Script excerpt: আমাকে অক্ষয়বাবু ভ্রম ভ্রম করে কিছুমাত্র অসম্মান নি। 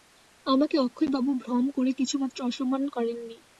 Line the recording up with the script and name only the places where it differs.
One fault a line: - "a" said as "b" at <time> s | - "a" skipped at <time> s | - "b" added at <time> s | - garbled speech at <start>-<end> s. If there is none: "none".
- "ভ্রম" skipped at 1.6 s
- "করেন" added at 3.0 s